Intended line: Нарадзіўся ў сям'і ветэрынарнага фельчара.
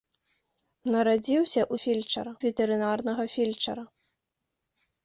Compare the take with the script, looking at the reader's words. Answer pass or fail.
fail